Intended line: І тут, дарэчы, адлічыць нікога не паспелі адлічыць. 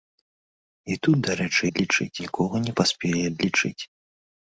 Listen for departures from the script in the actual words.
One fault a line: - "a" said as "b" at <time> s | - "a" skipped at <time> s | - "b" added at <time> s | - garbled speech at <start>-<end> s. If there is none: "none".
none